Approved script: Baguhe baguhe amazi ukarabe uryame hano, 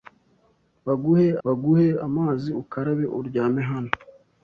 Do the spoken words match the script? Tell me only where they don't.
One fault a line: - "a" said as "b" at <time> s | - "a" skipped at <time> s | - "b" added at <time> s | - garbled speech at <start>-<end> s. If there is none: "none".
none